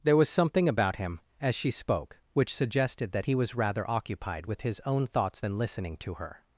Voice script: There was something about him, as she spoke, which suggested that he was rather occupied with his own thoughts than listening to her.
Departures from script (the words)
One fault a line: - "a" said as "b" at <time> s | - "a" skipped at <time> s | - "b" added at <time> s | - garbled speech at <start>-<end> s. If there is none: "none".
none